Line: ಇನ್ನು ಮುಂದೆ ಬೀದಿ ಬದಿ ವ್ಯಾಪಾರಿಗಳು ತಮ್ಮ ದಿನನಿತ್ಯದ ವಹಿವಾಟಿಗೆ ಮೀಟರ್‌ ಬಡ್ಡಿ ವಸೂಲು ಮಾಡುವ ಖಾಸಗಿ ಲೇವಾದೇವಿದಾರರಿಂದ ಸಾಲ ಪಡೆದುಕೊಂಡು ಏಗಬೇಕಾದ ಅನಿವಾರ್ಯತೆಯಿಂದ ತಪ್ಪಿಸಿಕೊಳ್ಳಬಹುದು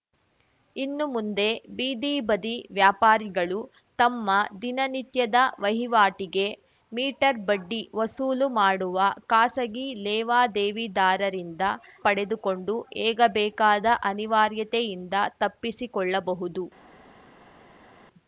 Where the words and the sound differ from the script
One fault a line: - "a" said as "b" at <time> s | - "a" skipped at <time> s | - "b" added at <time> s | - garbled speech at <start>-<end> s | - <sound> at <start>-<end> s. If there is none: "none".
- "ಸಾಲ" skipped at 11.6 s